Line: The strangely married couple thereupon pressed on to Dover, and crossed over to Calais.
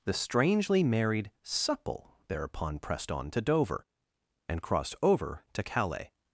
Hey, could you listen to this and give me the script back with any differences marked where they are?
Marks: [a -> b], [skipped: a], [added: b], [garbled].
The strangely married [couple -> supple] thereupon pressed on to Dover, and crossed over to Calais.